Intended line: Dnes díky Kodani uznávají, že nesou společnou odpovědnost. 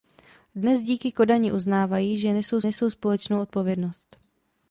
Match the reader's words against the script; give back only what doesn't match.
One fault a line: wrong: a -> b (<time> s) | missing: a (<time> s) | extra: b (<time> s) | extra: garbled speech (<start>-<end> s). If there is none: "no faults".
extra: nesou (2.6 s)